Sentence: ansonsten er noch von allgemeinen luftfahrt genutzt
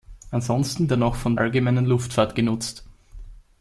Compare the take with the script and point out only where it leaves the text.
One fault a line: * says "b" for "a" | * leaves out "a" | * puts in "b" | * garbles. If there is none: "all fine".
all fine